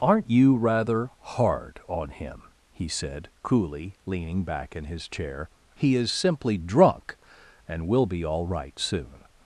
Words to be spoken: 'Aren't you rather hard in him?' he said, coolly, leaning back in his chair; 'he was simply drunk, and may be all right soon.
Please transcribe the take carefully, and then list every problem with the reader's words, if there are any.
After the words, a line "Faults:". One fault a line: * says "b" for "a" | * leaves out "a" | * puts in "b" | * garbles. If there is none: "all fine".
'Aren't you rather hard on him?' he said, coolly, leaning back in his chair; 'he is simply drunk, and will be all right soon.
Faults:
* says "on" for "in"
* says "is" for "was"
* says "will" for "may"